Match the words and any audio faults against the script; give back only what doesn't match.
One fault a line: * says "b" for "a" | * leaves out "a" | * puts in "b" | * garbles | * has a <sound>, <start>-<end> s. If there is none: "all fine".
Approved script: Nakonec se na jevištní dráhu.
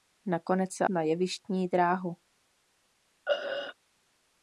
* has a throat clearing, 3.3-3.7 s